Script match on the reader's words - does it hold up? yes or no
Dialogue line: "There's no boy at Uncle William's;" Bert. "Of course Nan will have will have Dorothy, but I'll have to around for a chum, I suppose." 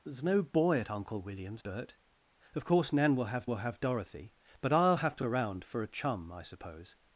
yes